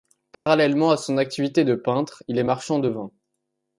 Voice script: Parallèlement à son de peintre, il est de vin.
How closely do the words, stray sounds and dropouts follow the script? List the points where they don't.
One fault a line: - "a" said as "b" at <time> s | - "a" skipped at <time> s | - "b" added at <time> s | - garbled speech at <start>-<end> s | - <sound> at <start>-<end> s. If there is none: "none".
- dropout at 0.3-0.5 s
- "activité" added at 1.2 s
- "marchand" added at 2.4 s